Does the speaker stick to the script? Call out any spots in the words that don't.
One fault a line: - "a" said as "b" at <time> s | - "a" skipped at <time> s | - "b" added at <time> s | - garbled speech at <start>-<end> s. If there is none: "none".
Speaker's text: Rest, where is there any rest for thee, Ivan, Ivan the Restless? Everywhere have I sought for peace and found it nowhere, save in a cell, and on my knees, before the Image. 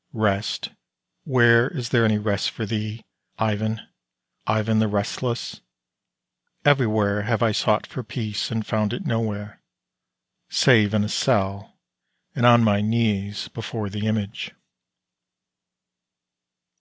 none